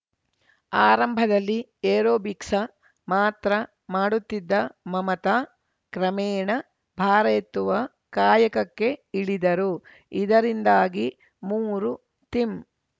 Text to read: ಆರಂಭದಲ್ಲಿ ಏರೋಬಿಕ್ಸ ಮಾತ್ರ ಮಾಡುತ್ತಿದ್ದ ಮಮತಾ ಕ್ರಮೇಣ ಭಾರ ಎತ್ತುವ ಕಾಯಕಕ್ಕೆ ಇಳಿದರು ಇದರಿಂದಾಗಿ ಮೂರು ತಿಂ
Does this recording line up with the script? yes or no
yes